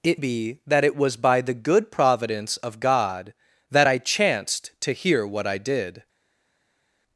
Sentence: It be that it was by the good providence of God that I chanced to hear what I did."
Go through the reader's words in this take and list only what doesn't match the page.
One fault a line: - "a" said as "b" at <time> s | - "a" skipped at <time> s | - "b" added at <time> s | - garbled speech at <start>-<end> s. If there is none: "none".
none